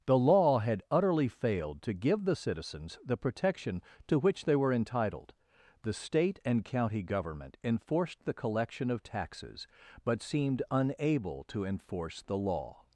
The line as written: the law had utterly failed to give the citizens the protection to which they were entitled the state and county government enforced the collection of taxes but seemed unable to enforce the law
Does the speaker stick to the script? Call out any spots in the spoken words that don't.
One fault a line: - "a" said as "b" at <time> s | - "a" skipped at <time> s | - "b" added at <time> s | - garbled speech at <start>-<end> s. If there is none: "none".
none